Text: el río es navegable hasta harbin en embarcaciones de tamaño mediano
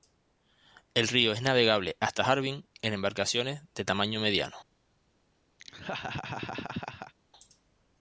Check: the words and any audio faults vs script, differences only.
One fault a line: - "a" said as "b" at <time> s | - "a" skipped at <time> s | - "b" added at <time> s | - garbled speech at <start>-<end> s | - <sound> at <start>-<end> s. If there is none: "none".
- laugh at 5.6-7.1 s